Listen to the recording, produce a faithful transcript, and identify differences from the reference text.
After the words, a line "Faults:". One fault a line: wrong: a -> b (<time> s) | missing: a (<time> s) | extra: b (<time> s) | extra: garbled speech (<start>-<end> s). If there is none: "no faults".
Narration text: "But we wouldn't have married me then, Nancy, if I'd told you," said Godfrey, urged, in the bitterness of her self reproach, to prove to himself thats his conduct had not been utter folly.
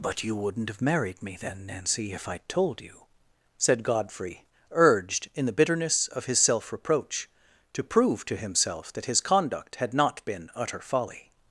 "But you wouldn't have married me then, Nancy, if I'd told you," said Godfrey, urged, in the bitterness of his self reproach, to prove to himself that his conduct had not been utter folly.
Faults:
wrong: we -> you (0.2 s)
wrong: her -> his (6.2 s)
wrong: thats -> that (8.9 s)